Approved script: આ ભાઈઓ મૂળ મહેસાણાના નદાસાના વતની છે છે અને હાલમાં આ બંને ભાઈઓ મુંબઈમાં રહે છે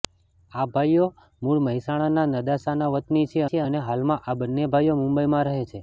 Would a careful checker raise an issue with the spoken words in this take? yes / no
no